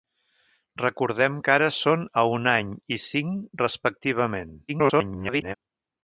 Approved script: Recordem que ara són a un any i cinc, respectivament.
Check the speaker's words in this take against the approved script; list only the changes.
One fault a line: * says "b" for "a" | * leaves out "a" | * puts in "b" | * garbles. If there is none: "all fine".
* garbles